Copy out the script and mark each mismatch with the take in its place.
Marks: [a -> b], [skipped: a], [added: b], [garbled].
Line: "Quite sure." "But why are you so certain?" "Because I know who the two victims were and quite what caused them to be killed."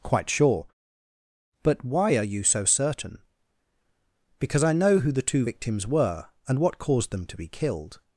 "Quite sure." "But why are you so certain?" "Because I know who the two victims were and [skipped: quite] what caused them to be killed."